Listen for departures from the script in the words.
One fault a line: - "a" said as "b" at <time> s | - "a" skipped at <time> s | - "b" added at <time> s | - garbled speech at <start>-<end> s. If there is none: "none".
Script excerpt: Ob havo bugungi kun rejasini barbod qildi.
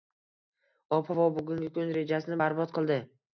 none